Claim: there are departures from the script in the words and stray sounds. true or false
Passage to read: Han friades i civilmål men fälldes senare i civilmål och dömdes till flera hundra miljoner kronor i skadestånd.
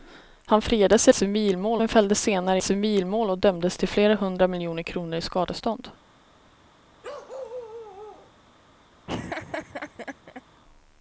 true